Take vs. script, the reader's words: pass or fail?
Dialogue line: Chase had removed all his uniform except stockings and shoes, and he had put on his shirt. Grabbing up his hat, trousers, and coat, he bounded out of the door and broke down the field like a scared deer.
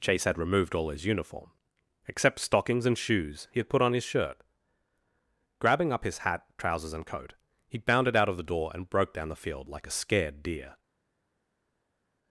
fail